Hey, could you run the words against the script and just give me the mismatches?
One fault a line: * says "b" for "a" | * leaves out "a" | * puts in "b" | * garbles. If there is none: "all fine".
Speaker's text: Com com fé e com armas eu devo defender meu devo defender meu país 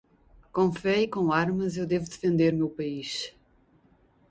* leaves out "com"
* leaves out "devo defender meu"